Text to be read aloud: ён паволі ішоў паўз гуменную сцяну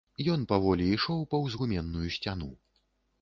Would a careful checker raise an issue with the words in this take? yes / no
no